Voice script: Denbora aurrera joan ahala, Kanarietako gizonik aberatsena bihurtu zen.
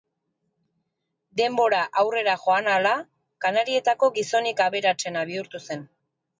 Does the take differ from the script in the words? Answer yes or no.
no